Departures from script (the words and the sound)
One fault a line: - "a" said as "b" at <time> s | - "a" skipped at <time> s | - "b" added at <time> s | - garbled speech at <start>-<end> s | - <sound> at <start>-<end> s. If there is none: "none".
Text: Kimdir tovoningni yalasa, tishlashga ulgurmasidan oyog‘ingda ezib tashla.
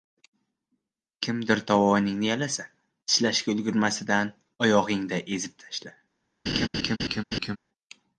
- laugh at 6.5-7.6 s